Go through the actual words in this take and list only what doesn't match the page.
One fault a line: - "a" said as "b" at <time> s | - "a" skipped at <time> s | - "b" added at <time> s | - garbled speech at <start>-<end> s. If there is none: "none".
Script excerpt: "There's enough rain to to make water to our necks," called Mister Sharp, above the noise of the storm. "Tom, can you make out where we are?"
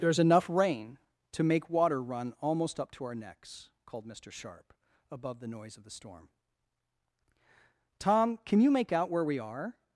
- "to" skipped at 1.4 s
- "run almost up" added at 2.0 s